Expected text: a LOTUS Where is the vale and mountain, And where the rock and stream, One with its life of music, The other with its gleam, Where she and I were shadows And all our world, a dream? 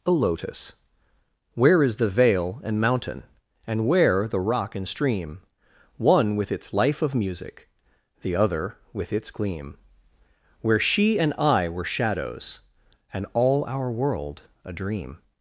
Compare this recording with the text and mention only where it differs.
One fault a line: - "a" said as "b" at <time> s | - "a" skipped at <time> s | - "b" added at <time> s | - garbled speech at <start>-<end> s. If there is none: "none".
none